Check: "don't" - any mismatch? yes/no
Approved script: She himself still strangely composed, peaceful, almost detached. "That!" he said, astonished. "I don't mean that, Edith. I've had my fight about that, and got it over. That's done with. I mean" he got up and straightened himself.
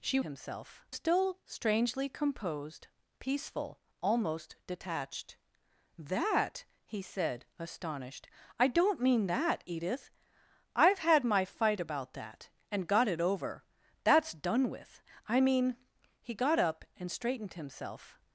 no